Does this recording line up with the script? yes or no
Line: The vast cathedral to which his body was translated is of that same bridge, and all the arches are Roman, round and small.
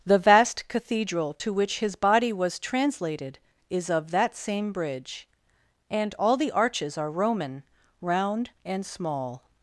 yes